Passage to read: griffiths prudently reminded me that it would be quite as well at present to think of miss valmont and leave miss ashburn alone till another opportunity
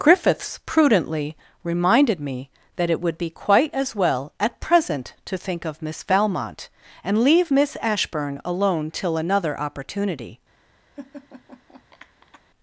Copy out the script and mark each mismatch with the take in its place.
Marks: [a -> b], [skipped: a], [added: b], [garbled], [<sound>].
griffiths prudently reminded me that it would be quite as well at present to think of miss valmont and leave miss ashburn alone till another opportunity [laugh]